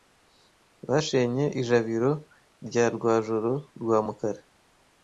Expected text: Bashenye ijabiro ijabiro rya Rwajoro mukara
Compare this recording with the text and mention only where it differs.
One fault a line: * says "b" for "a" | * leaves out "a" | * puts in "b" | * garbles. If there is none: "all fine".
* leaves out "ijabiro"
* puts in "rwa"